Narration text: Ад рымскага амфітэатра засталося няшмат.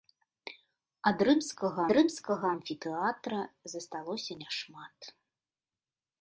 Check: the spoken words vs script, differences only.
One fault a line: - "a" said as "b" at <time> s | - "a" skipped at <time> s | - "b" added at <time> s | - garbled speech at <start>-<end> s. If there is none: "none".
- "рымскага" added at 2.0 s